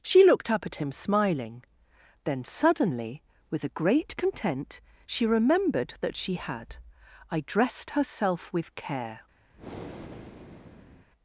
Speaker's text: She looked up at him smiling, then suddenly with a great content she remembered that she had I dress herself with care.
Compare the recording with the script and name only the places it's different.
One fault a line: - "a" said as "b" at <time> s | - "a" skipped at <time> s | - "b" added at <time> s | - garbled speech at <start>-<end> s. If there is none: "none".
- "dress" said as "dressed" at 7.4 s